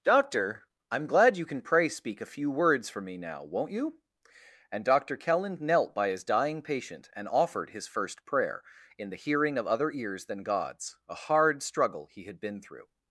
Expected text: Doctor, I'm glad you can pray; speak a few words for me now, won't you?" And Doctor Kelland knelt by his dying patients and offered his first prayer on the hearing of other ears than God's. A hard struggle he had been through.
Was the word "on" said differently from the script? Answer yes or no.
yes